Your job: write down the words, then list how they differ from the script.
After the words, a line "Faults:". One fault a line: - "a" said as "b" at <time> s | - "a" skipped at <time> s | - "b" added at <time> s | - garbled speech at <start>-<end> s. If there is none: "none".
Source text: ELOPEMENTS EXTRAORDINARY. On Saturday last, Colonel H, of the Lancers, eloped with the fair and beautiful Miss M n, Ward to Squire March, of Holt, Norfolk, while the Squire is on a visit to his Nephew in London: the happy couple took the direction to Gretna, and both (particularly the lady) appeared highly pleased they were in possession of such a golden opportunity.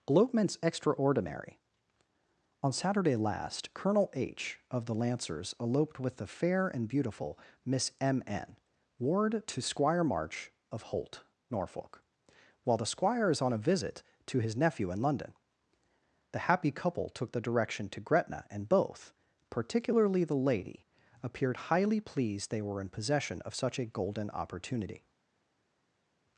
ELOPEMENTS EXTRAORDINARY. On Saturday last, Colonel H, of the Lancers, eloped with the fair and beautiful Miss M n, Ward to Squire March, of Holt, Norfolk, while the Squire is on a visit to his Nephew in London: the happy couple took the direction to Gretna, and both (particularly the lady) appeared highly pleased they were in possession of such a golden opportunity.
Faults:
none